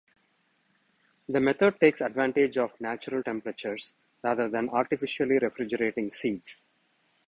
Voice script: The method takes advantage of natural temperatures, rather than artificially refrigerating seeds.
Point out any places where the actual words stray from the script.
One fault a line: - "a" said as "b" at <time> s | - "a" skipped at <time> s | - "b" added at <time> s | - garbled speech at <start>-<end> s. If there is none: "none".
none